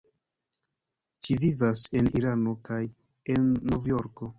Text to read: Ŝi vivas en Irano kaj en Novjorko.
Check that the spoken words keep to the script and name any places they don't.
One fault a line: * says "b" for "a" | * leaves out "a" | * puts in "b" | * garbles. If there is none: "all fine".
all fine